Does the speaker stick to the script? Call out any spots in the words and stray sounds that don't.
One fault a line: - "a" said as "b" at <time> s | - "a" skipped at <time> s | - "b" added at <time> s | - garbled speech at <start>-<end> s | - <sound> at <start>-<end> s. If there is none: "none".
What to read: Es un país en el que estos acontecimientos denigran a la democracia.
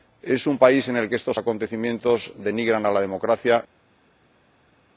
none